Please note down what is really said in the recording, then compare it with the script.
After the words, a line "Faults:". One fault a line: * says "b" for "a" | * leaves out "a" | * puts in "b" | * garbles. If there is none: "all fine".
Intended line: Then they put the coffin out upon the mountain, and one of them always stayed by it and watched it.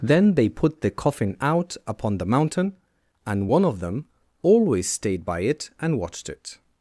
Then they put the coffin out upon the mountain, and one of them always stayed by it and watched it.
Faults:
all fine